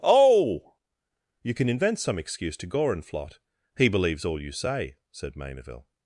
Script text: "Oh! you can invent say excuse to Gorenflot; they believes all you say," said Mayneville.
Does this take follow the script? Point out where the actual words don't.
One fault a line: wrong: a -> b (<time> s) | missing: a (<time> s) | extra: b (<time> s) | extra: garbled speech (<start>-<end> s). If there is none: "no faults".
wrong: say -> some (2.0 s)
wrong: they -> he (3.8 s)